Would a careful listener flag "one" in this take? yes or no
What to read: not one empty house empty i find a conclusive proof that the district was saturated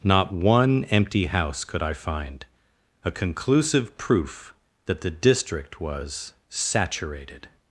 no